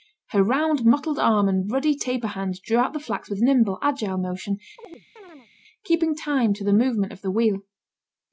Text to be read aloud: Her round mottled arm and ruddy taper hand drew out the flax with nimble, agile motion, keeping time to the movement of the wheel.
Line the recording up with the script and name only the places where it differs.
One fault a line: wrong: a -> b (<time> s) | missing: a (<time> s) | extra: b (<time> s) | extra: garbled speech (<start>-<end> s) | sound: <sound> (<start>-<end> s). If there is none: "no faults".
sound: chirp (4.8-5.5 s)